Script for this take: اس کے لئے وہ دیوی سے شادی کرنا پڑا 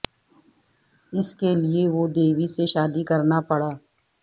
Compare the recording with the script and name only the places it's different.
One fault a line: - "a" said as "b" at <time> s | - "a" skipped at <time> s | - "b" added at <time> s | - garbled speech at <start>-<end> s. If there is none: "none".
none